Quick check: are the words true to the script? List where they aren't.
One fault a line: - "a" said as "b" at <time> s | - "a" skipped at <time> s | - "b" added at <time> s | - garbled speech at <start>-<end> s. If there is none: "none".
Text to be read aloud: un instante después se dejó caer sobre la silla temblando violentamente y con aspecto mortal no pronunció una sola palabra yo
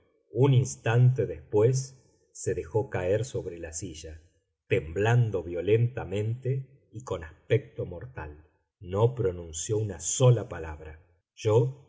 none